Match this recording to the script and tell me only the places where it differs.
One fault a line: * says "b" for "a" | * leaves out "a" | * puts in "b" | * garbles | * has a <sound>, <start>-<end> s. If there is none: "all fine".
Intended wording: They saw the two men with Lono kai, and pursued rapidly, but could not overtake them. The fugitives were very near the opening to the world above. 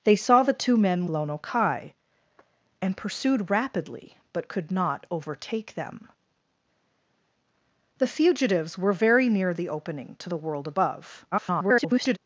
* leaves out "with"
* garbles